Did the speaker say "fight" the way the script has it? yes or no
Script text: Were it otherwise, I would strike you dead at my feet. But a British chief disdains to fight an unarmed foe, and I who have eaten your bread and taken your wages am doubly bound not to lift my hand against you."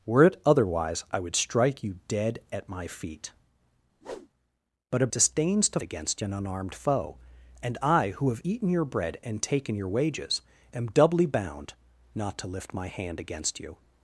no